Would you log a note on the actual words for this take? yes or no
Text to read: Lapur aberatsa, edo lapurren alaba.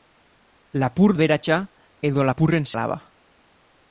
no